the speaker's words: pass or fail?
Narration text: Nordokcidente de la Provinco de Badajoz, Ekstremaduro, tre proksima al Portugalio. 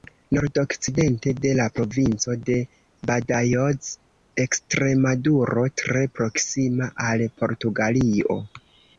pass